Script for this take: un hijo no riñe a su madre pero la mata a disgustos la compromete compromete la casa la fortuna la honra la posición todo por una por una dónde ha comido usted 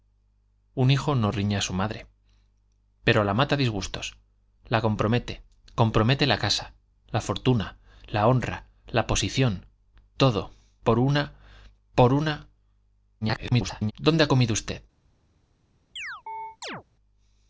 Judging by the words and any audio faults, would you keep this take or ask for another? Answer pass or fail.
fail